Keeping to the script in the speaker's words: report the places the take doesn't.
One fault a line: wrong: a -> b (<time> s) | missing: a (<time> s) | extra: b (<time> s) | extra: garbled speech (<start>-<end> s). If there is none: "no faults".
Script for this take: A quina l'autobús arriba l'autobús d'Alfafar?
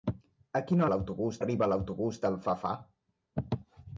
no faults